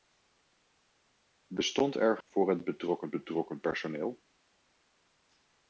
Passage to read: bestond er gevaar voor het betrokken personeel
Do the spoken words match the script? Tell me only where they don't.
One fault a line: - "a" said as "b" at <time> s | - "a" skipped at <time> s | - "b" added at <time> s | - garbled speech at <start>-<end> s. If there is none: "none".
- "gevaar" skipped at 2.2 s
- "betrokken" added at 3.1 s